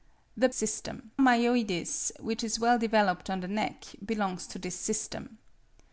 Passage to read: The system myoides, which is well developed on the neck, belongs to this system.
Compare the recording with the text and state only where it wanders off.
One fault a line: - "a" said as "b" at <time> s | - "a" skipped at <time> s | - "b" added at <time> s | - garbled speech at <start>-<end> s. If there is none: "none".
none